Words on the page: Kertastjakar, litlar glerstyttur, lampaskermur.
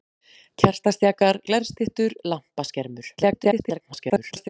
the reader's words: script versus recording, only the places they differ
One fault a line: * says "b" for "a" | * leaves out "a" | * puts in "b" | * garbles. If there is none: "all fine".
* leaves out "litlar"
* garbles